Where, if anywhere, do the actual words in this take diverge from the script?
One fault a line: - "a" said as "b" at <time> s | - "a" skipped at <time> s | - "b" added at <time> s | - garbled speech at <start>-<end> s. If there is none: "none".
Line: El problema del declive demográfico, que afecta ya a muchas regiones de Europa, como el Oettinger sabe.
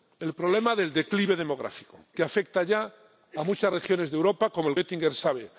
none